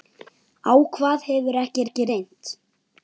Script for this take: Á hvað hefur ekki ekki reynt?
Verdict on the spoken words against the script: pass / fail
pass